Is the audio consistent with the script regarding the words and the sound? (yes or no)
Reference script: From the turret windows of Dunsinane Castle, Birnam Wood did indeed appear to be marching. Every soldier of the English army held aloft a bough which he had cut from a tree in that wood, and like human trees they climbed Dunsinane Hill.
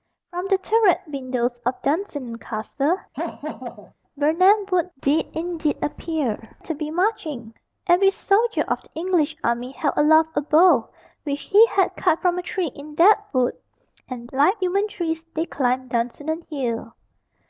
no